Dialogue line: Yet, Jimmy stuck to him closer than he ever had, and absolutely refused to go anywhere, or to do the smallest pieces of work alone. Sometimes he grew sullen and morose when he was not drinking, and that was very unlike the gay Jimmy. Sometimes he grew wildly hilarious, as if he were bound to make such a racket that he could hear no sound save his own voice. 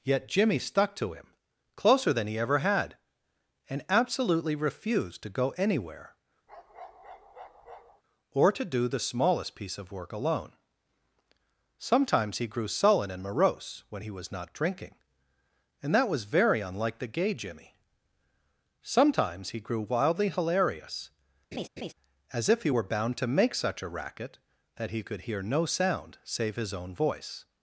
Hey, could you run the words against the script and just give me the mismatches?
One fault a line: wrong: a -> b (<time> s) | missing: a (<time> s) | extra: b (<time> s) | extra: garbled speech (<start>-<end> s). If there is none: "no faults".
wrong: pieces -> piece (9.5 s)